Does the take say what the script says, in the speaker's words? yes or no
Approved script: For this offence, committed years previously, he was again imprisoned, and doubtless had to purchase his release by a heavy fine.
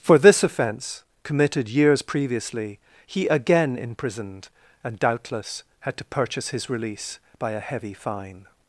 no